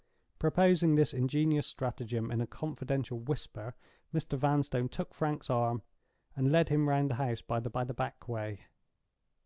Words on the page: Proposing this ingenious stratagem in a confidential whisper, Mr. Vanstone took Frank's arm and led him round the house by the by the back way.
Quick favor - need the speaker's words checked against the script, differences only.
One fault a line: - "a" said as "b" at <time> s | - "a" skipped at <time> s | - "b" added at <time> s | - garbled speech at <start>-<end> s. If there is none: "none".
none